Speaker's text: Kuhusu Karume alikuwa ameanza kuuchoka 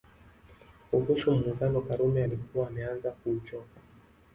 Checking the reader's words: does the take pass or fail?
fail